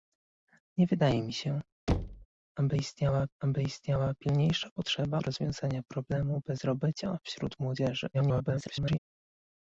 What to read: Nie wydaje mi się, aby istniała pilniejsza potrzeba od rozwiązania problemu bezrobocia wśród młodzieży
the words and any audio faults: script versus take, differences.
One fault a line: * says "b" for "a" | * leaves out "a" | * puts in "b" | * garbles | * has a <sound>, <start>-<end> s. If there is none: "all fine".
* has a thud, 1.9-2.3 s
* puts in "aby istniała"
* leaves out "od"
* garbles